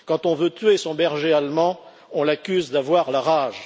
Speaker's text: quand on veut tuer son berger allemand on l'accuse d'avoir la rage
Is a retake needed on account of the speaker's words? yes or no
no